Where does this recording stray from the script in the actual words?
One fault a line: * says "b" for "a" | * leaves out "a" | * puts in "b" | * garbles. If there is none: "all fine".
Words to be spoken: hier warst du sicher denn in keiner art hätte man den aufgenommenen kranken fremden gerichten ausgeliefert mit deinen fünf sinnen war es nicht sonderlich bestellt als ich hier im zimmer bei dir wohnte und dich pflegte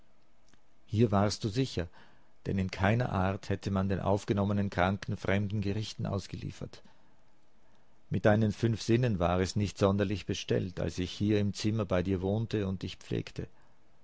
all fine